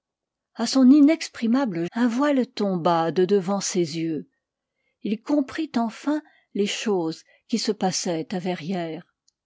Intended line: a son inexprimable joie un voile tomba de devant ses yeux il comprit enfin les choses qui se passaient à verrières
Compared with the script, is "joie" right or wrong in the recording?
wrong